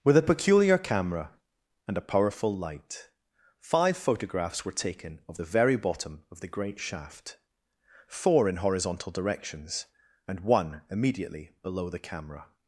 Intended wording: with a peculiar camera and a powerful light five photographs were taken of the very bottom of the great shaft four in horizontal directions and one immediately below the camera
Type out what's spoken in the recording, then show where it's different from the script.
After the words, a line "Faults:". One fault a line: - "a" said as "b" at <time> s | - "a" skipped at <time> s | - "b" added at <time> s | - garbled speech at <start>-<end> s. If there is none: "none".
with a peculiar camera and a powerful light five photographs were taken of the very bottom of the great shaft four in horizontal directions and one immediately below the camera
Faults:
none